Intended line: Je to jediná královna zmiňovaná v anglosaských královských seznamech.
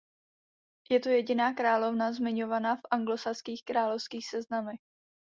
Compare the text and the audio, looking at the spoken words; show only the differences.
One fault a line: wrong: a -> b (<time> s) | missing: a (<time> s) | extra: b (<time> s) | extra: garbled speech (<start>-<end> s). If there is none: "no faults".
no faults